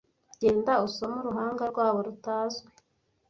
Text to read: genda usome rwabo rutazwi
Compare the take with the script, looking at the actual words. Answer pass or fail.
fail